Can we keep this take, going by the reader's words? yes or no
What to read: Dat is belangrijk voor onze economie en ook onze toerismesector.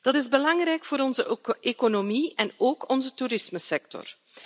yes